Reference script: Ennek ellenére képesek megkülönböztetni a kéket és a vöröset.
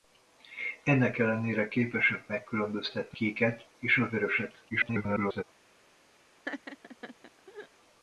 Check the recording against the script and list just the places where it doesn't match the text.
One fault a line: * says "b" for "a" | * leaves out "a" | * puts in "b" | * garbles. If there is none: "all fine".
* leaves out "a"
* garbles